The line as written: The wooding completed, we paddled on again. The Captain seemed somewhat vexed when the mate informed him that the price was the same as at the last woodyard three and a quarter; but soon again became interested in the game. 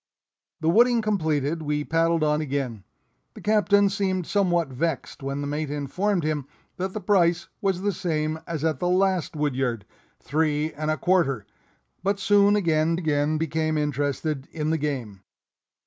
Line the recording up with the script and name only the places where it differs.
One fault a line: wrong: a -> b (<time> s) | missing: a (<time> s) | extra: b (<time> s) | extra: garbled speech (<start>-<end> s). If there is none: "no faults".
extra: again (12.9 s)